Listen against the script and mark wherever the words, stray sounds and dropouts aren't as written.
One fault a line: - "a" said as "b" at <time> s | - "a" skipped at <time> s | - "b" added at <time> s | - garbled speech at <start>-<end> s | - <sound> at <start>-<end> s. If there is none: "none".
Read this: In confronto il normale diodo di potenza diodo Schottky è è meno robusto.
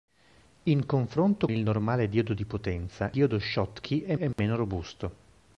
- dropout at 4.3-4.4 s